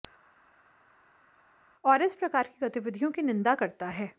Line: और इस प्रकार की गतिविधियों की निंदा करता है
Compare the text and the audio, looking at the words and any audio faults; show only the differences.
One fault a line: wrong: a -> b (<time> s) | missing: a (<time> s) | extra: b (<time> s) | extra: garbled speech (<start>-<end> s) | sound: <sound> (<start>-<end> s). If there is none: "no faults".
no faults